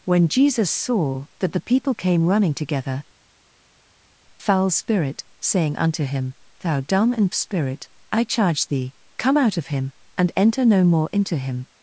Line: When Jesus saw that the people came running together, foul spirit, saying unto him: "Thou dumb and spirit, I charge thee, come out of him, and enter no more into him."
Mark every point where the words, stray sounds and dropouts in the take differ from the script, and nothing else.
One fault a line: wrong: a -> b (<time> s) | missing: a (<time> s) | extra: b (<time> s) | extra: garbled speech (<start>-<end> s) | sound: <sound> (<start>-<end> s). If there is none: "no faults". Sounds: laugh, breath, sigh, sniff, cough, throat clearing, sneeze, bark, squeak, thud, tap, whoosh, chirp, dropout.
no faults